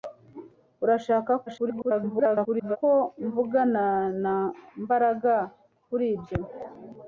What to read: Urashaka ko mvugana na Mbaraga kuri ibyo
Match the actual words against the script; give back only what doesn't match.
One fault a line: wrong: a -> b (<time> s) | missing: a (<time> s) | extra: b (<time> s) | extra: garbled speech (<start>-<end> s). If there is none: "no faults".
extra: garbled speech (1.5-2.8 s)